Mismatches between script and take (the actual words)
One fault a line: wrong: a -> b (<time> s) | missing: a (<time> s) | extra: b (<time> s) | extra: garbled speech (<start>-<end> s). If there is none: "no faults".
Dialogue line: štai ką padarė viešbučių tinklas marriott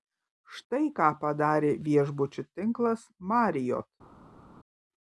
no faults